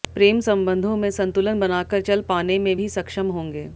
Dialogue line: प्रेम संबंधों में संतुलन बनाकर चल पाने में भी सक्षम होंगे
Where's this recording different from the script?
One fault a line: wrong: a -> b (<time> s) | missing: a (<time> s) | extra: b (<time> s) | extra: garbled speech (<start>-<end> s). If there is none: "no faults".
no faults